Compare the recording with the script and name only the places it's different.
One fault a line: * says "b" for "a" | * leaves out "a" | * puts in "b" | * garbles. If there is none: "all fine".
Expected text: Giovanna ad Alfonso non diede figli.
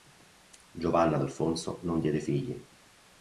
all fine